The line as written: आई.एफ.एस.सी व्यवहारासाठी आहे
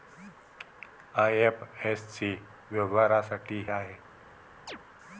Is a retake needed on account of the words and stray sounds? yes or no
yes